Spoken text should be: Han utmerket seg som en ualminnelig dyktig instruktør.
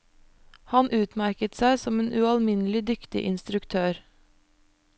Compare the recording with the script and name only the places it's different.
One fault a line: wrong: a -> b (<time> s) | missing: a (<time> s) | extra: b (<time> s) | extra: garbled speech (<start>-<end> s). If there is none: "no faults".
no faults